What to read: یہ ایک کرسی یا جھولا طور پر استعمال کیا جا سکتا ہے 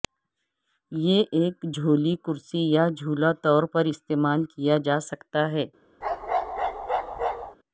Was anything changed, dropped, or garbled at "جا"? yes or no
no